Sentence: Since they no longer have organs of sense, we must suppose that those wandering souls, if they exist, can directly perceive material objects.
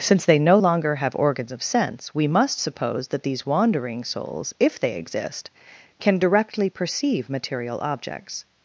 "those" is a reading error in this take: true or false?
true